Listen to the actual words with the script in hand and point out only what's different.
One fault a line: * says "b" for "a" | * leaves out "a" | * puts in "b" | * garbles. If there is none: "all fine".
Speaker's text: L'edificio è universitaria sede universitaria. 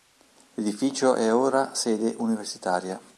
* says "ora" for "universitaria"